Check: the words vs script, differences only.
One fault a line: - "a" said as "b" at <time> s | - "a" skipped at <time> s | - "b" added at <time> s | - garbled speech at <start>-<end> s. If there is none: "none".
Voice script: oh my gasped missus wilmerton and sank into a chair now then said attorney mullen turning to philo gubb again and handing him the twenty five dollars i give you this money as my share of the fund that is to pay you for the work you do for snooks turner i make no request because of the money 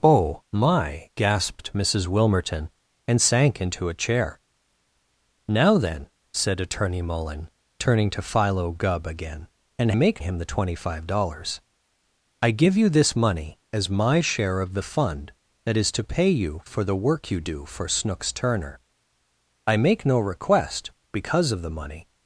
- "handing" said as "make" at 9.9 s